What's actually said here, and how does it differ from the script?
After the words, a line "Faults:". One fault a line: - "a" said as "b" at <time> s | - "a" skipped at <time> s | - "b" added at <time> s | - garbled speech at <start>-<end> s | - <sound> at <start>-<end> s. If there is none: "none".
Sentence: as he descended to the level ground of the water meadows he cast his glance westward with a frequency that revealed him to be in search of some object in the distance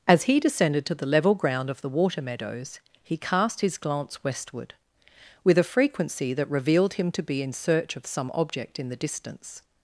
as he descended to the level ground of the water meadows he cast his glance westward with a frequency that revealed him to be in search of some object in the distance
Faults:
none